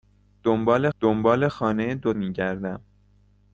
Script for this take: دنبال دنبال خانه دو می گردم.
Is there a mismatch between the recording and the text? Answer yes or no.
no